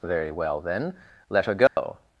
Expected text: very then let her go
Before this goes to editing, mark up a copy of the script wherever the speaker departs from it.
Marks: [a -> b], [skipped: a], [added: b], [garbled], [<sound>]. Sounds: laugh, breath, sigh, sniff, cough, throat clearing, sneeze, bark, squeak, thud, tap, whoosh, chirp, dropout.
very [added: well] then let her go [dropout]